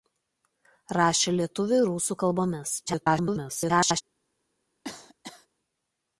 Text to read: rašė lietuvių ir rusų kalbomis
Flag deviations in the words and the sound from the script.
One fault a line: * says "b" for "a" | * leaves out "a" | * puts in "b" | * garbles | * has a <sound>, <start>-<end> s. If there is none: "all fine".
* garbles
* has a cough, 4.8-5.5 s